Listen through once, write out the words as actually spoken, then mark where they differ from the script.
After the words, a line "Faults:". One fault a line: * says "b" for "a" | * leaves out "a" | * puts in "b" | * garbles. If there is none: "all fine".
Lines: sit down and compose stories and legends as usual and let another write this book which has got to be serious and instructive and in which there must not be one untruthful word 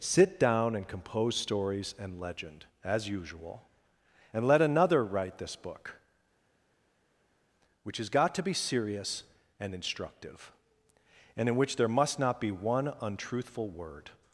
sit down and compose stories and legend as usual and let another write this book which has got to be serious and instructive and in which there must not be one untruthful word
Faults:
* says "legend" for "legends"